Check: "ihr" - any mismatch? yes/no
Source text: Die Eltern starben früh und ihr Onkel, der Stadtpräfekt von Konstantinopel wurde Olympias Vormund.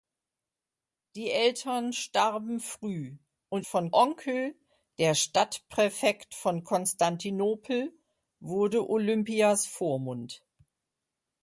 yes